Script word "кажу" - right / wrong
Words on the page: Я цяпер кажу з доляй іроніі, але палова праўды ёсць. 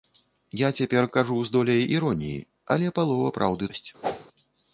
right